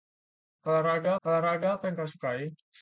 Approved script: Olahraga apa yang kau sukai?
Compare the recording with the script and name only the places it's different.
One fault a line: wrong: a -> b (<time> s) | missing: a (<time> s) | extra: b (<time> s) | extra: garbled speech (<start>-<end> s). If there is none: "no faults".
extra: olahraga (1.3 s)